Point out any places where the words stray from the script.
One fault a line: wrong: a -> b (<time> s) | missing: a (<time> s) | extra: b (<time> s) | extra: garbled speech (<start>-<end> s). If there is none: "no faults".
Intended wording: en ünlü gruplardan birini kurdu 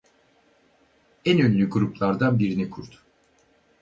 no faults